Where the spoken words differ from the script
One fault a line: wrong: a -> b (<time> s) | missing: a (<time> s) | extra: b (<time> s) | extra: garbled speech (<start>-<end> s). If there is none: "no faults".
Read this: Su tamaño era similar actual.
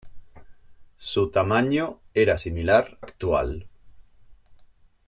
no faults